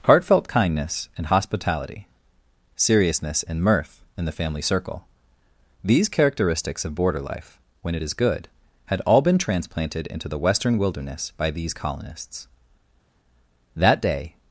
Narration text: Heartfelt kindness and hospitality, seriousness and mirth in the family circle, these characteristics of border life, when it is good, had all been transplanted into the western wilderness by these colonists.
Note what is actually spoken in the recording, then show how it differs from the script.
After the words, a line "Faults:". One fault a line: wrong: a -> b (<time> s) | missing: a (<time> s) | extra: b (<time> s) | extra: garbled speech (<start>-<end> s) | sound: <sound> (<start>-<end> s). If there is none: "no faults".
Heartfelt kindness and hospitality, seriousness and mirth in the family circle, these characteristics of border life, when it is good, had all been transplanted into the western wilderness by these colonists. That day
Faults:
extra: That day (13.7 s)